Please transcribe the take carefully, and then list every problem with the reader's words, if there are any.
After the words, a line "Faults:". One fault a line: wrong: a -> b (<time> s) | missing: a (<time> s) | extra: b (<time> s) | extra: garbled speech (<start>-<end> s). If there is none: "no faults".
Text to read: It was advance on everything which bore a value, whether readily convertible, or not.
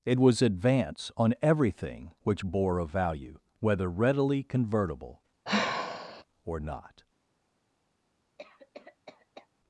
It was advance on everything which bore a value, whether readily convertible, or not.
Faults:
no faults